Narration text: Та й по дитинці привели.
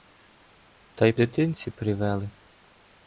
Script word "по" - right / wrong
wrong